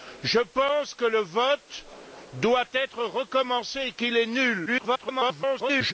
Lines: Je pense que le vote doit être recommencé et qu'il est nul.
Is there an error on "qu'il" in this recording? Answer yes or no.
no